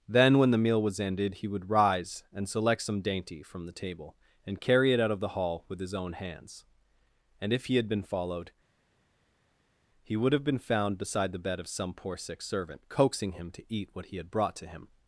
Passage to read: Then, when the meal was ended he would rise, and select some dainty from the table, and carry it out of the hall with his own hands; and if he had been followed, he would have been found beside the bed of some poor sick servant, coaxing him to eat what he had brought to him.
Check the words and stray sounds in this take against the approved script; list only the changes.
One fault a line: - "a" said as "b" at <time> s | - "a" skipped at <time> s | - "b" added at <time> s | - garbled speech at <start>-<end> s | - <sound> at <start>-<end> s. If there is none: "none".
none